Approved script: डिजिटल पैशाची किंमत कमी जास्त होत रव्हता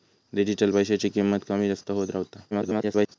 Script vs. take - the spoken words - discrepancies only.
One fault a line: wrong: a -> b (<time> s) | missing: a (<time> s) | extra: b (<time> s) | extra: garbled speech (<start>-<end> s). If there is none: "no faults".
extra: garbled speech (2.5-3.2 s)